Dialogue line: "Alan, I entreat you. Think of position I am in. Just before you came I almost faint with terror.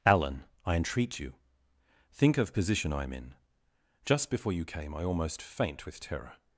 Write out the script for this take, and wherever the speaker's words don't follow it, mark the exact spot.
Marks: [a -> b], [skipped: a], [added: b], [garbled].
"Alan, I entreat you. Think of position I am in. Just before you came I almost faint with terror.